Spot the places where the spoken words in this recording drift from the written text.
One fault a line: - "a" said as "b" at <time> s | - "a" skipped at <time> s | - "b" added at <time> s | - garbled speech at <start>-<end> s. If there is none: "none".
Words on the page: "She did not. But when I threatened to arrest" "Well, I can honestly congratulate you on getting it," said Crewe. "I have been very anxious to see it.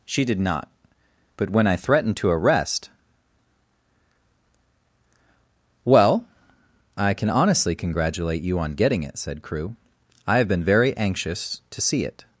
none